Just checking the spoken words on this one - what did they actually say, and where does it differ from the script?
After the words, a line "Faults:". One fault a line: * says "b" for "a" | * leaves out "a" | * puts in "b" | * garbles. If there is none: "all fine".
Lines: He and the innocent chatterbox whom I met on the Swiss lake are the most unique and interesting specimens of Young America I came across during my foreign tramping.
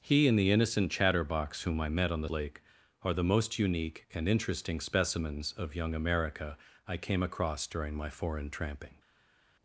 He and the innocent chatterbox whom I met on the Lake are the most unique and interesting specimens of Young America I came across during my foreign tramping.
Faults:
* leaves out "Swiss"